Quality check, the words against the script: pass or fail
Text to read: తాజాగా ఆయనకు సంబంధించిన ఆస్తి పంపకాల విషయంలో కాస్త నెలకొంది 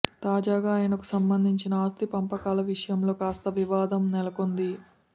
fail